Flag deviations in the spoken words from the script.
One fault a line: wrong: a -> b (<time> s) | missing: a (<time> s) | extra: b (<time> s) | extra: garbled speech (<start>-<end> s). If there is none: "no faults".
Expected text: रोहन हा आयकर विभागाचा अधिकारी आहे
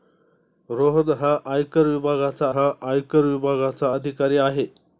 extra: हा आयकर विभागाचा (2.5 s)